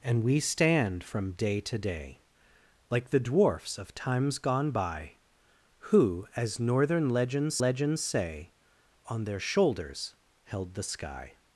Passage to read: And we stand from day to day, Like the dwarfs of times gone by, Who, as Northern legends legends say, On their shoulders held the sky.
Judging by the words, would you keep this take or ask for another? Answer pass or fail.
pass